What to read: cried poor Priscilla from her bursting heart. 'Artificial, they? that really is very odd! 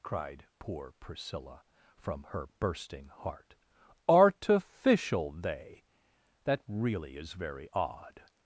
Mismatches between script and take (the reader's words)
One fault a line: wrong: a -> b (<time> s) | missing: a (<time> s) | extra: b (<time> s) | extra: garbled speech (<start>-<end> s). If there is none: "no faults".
no faults